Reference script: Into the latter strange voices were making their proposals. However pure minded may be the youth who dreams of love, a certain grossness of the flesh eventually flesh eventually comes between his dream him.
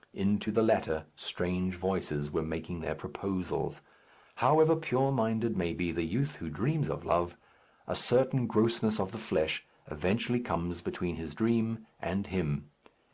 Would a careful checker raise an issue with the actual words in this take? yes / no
yes